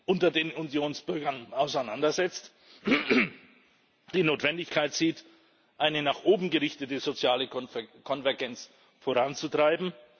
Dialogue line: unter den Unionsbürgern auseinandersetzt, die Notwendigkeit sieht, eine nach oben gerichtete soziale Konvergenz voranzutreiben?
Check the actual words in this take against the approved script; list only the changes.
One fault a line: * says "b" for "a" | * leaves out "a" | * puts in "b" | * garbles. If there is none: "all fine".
all fine